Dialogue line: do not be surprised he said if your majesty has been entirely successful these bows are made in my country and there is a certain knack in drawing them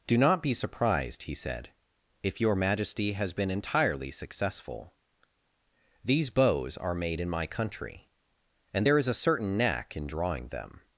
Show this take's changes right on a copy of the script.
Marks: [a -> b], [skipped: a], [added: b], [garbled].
do not be surprised he said if your majesty has been entirely successful these bows are made in my country and there is a certain knack in drawing them